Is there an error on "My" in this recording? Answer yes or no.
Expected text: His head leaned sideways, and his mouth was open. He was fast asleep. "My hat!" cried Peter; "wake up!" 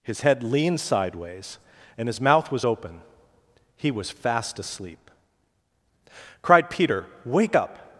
yes